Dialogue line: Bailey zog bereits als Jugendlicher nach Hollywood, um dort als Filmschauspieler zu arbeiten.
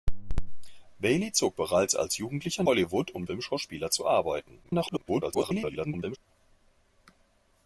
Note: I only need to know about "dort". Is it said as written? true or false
false